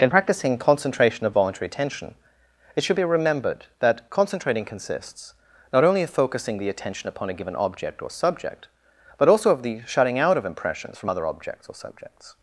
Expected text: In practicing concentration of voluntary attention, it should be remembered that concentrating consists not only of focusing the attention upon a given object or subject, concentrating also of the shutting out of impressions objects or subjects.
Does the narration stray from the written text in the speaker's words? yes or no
yes